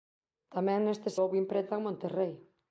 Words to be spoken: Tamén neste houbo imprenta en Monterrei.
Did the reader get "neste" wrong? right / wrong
right